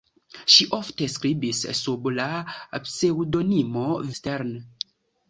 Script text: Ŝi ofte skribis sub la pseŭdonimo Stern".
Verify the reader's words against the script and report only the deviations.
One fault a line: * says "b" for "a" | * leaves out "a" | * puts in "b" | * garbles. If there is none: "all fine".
all fine